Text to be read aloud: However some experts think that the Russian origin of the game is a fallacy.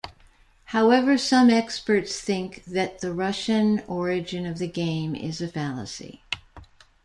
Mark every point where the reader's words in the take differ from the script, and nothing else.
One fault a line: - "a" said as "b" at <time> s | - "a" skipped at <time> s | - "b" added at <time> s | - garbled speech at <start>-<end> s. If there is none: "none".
none